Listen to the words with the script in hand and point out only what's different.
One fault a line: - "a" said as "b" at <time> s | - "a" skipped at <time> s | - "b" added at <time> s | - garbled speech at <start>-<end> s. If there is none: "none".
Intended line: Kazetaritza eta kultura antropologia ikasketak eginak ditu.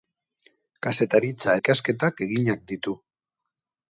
- "eta kultura antropologia" skipped at 1.5 s